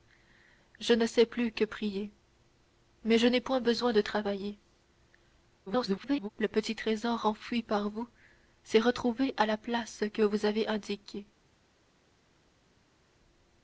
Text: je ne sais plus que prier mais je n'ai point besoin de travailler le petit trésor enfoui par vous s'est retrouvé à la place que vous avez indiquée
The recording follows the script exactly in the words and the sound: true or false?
false